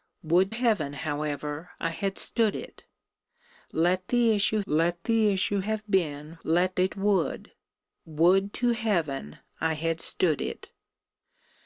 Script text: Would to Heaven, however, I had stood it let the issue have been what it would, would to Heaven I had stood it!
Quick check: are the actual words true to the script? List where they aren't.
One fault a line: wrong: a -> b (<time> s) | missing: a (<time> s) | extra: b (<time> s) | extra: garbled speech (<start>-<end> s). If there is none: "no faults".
missing: to (0.6 s)
extra: let the issue (4.7 s)
wrong: what -> let (6.4 s)